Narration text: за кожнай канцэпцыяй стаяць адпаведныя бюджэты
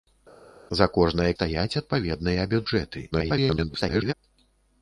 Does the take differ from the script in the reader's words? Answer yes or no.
yes